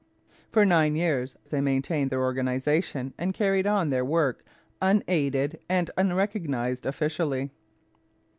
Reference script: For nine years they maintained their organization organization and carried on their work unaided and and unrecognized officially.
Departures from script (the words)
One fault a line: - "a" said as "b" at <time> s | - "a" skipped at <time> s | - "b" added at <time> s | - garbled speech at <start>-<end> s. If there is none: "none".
- "organization" skipped at 3.1 s
- "and" skipped at 5.9 s